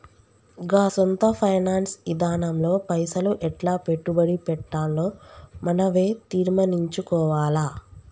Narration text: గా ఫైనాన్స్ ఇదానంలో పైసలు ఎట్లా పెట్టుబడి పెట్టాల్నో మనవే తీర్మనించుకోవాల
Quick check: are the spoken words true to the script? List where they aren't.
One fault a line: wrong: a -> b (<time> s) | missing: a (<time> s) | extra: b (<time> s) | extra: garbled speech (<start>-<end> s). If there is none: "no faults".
extra: సొంత (0.9 s)